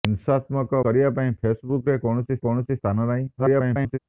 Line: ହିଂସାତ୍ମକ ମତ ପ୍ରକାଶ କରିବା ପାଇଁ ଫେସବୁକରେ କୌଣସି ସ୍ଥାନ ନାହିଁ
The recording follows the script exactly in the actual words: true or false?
false